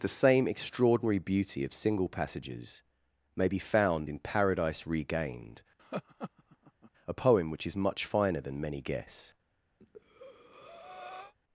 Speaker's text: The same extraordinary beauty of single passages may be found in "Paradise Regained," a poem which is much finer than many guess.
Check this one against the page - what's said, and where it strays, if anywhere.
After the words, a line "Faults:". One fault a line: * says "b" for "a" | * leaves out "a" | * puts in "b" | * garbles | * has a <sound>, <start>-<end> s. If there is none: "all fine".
The same extraordinary beauty of single passages may be found in "Paradise Regained," a poem which is much finer than many guess.
Faults:
* has a laugh, 5.8-6.9 s
* has a breath, 9.8-11.3 s